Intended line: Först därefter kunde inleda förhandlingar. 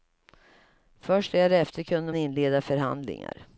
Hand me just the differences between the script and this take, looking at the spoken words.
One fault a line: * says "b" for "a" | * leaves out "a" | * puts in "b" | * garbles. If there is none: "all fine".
all fine